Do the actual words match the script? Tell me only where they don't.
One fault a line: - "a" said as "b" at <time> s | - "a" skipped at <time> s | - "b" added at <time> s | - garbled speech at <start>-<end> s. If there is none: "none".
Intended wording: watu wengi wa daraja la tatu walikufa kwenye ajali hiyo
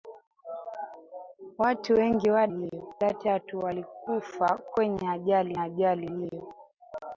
- "daraja" said as "hiyo" at 2.6 s
- "ajali" added at 5.6 s